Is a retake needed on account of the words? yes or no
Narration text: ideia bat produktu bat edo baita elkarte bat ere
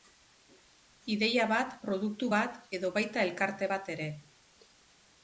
no